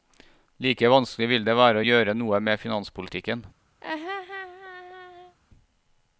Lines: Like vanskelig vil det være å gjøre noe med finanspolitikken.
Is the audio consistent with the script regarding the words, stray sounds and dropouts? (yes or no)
no